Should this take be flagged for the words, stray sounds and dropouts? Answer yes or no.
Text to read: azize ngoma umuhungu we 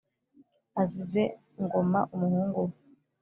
no